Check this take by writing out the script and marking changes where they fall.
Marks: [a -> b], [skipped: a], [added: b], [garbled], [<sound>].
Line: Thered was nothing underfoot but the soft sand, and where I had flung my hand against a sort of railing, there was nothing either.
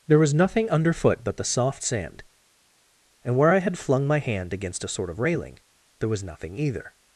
[Thered -> There] was nothing underfoot but the soft sand, and where I had flung my hand against a sort of railing, there was nothing either.